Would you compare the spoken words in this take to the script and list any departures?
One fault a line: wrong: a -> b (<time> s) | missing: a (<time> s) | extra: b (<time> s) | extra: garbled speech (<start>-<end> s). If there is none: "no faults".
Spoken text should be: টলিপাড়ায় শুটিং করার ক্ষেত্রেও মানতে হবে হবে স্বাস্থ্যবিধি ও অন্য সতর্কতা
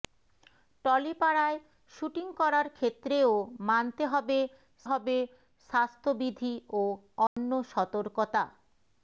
no faults